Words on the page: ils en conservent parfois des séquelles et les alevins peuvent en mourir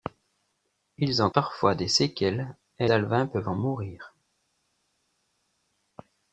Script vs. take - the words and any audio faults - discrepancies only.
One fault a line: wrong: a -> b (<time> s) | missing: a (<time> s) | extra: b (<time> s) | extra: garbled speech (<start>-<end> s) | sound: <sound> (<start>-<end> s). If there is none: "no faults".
missing: conservent (1.3 s)
missing: les (2.9 s)